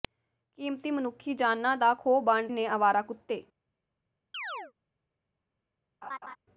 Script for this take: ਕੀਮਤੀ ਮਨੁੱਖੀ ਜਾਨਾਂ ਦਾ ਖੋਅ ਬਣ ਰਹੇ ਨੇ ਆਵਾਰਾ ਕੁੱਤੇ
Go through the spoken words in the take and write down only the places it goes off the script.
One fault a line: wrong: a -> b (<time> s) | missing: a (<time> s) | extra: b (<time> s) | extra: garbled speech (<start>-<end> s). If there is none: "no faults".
missing: ਰਹੇ (2.5 s)